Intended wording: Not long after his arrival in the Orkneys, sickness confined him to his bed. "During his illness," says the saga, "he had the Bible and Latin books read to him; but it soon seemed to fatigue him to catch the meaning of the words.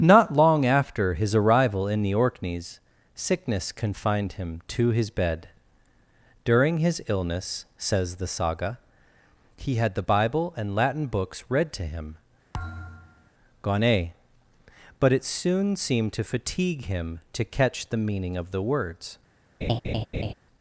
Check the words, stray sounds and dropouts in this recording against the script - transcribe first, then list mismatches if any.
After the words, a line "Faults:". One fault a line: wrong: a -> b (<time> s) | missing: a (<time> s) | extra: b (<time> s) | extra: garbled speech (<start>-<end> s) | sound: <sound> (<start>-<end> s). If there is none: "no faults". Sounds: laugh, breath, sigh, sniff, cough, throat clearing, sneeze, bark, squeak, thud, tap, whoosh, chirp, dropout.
Not long after his arrival in the Orkneys, sickness confined him to his bed. "During his illness," says the saga, "he had the Bible and Latin books read to him; gone but it soon seemed to fatigue him to catch the meaning of the words.
Faults:
sound: thud (12.5-13.3 s)
extra: gone (13.6 s)
sound: laugh (19.6-20.3 s)